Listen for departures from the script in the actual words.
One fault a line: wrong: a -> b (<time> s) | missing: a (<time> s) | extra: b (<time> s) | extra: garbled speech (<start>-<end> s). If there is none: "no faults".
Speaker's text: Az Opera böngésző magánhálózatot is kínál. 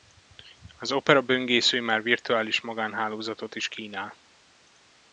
extra: már virtuális (1.8 s)